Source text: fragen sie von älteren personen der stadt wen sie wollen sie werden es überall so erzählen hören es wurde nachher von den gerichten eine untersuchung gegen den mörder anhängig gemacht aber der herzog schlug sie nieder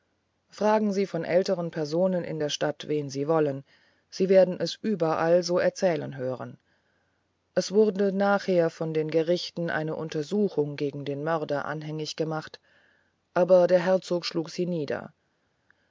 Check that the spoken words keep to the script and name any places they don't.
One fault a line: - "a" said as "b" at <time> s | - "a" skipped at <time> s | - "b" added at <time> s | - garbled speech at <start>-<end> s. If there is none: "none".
- "in" added at 2.2 s